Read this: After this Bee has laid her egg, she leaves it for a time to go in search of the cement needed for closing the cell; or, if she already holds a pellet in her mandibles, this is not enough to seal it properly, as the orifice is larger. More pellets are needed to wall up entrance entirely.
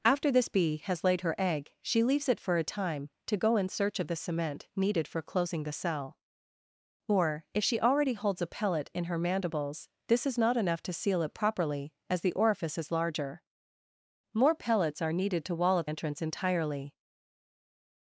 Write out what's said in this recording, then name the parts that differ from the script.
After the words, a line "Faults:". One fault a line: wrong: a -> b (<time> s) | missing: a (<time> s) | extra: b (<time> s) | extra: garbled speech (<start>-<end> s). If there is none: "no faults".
After this Bee has laid her egg, she leaves it for a time to go in search of the cement needed for closing the cell; or, if she already holds a pellet in her mandibles, this is not enough to seal it properly, as the orifice is larger. More pellets are needed to wall up entrance entirely.
Faults:
no faults